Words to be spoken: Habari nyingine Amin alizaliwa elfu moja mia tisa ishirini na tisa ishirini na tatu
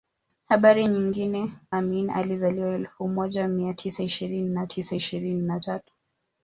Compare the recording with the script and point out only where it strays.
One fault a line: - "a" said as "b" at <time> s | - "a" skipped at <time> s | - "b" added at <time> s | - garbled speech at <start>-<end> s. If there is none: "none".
none